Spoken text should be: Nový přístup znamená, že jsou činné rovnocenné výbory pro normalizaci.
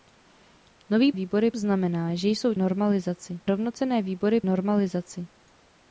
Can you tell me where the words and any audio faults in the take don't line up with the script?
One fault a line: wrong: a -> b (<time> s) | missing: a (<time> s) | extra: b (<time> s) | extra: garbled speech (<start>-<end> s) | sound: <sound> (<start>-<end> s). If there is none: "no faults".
wrong: přístup -> výbory (1.1 s)
wrong: činné -> normalizaci (2.5 s)
missing: pro (4.4 s)